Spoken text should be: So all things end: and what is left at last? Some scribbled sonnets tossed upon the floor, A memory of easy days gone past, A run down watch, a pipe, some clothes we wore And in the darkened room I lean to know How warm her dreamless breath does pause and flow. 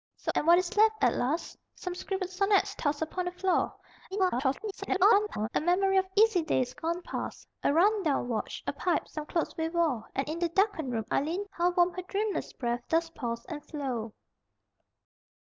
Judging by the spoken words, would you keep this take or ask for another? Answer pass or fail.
fail